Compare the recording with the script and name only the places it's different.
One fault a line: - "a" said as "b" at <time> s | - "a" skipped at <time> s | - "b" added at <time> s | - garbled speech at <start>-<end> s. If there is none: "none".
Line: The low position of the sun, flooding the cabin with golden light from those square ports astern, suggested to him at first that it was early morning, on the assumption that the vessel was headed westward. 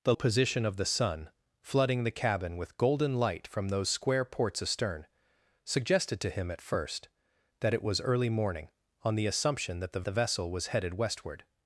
- "low" skipped at 0.1 s
- "the" added at 10.1 s